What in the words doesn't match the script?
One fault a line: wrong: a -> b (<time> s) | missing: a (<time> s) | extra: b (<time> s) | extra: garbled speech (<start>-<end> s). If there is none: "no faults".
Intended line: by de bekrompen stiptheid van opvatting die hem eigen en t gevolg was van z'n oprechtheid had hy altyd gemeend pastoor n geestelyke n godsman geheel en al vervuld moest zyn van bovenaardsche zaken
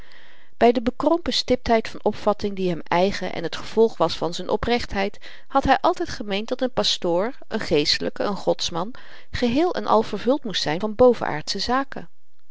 extra: dat n (6.5 s)